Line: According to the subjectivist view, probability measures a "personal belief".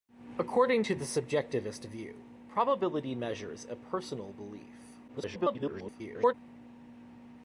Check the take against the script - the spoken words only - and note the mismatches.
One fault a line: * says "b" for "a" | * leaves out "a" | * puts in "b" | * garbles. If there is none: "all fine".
* garbles